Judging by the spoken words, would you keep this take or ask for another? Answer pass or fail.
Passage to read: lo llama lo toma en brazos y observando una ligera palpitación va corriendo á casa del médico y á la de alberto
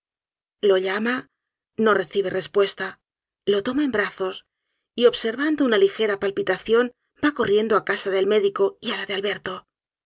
fail